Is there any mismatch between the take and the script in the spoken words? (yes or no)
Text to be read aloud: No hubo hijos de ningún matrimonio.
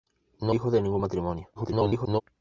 yes